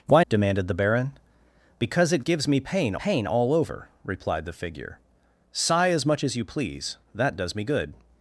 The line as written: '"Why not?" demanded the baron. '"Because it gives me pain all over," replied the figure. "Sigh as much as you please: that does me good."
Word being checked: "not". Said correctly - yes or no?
no